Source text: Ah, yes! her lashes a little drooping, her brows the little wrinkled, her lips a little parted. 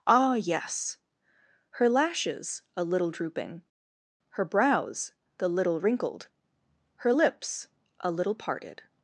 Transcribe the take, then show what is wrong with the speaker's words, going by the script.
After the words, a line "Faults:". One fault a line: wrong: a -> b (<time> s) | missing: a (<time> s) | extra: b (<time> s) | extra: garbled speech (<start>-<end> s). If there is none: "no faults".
Ah, yes! her lashes a little drooping, her brows the little wrinkled, her lips a little parted.
Faults:
no faults